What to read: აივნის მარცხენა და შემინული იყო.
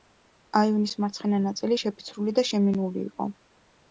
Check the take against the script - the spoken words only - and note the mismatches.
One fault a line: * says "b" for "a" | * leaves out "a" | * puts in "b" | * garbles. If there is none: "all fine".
* puts in "ნაწილი შეფიცრული"